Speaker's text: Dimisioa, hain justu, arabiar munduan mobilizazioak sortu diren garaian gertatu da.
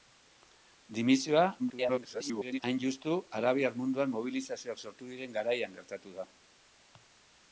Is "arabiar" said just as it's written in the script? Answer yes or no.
yes